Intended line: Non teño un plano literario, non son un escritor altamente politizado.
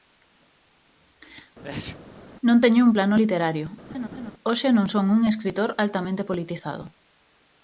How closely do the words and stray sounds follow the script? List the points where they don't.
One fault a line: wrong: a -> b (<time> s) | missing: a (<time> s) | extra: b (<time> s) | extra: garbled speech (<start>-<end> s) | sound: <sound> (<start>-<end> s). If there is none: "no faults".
sound: sneeze (1.6-2.0 s)
sound: laugh (3.9-4.3 s)
extra: hoxe (4.5 s)